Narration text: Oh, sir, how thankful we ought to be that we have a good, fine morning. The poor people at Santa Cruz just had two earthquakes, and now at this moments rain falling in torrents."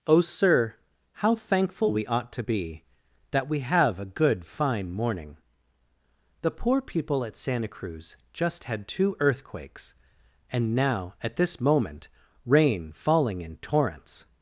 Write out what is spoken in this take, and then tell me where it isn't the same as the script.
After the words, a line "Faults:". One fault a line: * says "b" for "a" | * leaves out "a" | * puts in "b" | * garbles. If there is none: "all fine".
Oh, sir, how thankful we ought to be that we have a good, fine morning. The poor people at Santa Cruz just had two earthquakes, and now at this moment rain falling in torrents."
Faults:
* says "moment" for "moments"